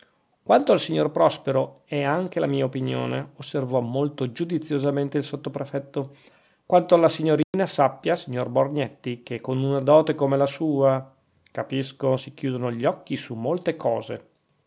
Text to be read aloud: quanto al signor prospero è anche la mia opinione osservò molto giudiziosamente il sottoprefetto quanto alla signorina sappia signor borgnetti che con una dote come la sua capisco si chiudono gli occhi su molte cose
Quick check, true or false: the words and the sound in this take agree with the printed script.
false